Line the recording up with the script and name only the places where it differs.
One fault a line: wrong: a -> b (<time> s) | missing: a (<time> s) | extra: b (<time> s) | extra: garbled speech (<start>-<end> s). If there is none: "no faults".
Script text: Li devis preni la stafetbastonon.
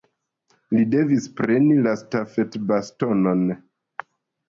no faults